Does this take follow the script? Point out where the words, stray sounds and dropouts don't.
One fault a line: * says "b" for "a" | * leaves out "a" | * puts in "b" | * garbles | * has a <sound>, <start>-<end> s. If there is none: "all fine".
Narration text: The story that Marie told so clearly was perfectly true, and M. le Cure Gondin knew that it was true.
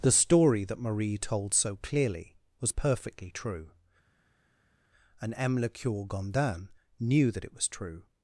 all fine